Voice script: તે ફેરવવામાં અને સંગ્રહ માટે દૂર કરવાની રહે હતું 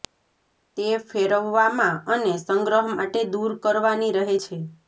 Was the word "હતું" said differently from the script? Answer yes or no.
yes